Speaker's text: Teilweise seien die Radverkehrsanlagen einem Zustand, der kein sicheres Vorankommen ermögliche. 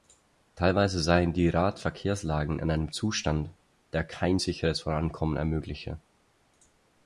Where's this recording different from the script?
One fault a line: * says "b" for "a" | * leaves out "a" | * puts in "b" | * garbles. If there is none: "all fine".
* puts in "in"